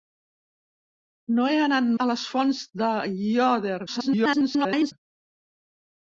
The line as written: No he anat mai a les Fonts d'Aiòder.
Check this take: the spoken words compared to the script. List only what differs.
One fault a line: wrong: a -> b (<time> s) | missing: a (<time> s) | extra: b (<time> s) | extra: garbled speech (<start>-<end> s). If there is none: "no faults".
missing: mai (1.9 s)
extra: garbled speech (3.9-4.9 s)